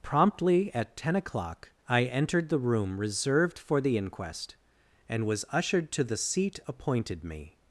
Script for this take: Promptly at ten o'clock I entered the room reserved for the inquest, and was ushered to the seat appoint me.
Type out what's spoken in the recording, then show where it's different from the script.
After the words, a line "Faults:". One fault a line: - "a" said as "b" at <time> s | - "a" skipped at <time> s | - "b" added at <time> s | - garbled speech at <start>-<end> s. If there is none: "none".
Promptly at ten o'clock I entered the room reserved for the inquest, and was ushered to the seat appointed me.
Faults:
- "appoint" said as "appointed" at 6.7 s